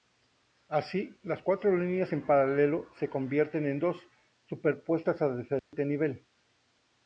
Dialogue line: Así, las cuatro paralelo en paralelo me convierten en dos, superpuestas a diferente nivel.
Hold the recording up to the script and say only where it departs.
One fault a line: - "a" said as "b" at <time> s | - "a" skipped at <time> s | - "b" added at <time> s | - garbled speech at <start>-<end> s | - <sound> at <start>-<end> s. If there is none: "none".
- "paralelo" said as "líneas" at 1.8 s
- "me" said as "se" at 2.9 s
- dropout at 5.6-5.7 s